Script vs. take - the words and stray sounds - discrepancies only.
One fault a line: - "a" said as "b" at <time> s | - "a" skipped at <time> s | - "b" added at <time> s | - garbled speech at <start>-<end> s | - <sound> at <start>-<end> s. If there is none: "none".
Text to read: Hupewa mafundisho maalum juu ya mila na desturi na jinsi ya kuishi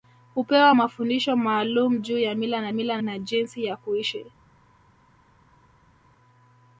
- "desturi" said as "mila" at 2.7 s